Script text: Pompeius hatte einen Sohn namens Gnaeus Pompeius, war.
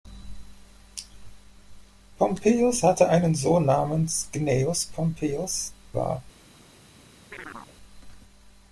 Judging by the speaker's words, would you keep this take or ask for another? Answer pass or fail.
pass